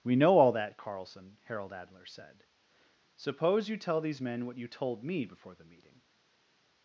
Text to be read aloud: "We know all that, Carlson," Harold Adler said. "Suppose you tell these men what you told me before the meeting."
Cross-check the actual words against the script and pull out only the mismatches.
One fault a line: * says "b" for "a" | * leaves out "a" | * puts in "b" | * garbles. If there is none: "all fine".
all fine